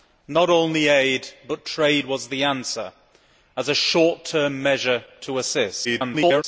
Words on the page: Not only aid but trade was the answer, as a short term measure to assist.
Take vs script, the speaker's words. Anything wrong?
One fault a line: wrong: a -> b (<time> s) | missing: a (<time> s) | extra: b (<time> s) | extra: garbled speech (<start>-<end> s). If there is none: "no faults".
extra: garbled speech (5.8-6.4 s)